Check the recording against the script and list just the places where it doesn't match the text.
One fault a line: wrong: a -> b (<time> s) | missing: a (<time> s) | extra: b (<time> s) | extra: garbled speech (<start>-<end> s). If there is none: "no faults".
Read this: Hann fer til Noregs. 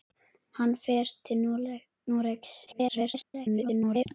extra: garbled speech (2.7-4.1 s)